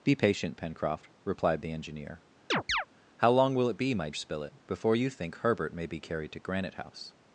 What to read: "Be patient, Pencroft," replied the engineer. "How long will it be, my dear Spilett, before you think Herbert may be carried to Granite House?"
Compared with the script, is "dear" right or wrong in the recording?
wrong